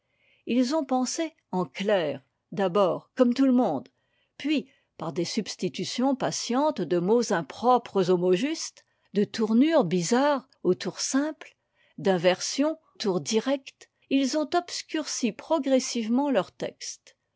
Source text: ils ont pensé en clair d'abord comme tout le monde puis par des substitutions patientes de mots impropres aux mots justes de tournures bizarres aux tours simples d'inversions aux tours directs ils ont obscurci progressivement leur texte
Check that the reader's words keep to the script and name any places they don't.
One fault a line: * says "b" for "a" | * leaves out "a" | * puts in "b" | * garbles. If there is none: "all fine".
* leaves out "aux"